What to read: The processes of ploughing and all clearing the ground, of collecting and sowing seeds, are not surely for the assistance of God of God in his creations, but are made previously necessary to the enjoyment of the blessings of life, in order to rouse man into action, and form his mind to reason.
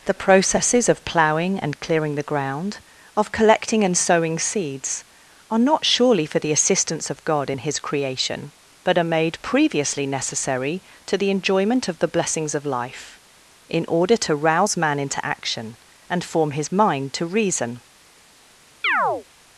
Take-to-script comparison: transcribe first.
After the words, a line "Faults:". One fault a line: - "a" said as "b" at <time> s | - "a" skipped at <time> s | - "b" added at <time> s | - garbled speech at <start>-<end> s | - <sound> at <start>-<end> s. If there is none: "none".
The processes of ploughing and clearing the ground, of collecting and sowing seeds, are not surely for the assistance of God in his creation, but are made previously necessary to the enjoyment of the blessings of life, in order to rouse man into action, and form his mind to reason.
Faults:
- "all" skipped at 1.8 s
- "of God" skipped at 7.5 s
- "creations" said as "creation" at 7.8 s
- chirp at 18.8-19.2 s